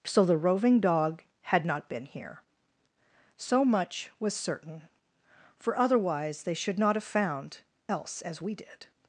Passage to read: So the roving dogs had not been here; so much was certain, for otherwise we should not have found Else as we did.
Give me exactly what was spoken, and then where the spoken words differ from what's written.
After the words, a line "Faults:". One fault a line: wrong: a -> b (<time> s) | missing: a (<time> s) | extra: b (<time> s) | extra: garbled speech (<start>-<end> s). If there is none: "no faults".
So the roving dog had not been here; so much was certain, for otherwise they should not have found Else as we did.
Faults:
wrong: dogs -> dog (0.8 s)
wrong: we -> they (6.4 s)